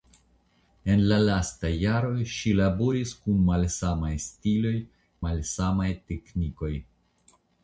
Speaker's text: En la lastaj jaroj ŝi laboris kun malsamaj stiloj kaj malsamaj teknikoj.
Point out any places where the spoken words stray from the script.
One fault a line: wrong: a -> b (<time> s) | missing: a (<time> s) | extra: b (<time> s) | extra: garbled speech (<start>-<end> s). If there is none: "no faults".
missing: kaj (4.8 s)